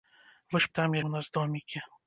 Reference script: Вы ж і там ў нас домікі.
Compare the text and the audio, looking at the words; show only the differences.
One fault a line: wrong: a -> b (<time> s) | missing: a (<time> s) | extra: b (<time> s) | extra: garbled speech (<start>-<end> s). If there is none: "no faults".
no faults